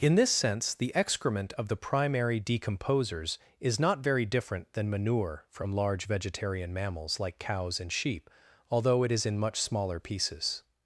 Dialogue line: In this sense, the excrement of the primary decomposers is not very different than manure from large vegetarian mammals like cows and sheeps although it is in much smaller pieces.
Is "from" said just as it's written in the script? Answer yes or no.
yes